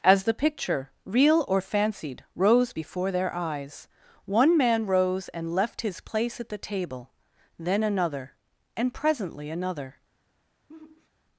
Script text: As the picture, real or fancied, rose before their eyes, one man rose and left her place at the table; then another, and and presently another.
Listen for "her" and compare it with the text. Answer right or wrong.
wrong